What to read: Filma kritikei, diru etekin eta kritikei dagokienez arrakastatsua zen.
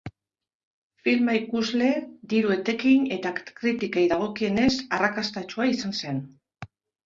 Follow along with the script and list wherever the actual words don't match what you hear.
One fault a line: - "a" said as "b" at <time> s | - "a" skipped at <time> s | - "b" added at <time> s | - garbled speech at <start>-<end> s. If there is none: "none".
- "kritikei" said as "ikusle" at 1.4 s
- "izan" added at 5.8 s